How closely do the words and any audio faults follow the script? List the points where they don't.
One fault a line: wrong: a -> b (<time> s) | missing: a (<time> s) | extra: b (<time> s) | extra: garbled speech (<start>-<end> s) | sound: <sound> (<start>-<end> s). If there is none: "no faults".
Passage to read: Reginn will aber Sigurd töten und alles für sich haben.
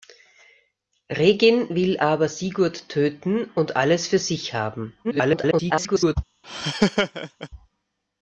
extra: garbled speech (5.0-6.2 s)
sound: laugh (6.4-7.5 s)